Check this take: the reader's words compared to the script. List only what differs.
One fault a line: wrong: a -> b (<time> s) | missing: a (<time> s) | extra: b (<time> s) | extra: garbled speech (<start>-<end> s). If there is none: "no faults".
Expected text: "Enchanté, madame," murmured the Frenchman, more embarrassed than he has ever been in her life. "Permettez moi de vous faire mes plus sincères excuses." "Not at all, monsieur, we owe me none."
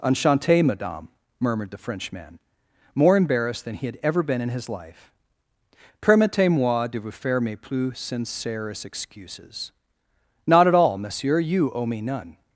wrong: has -> had (3.9 s)
wrong: her -> his (4.5 s)
wrong: we -> you (11.4 s)